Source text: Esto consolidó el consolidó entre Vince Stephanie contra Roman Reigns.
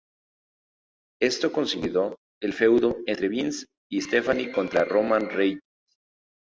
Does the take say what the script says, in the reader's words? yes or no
no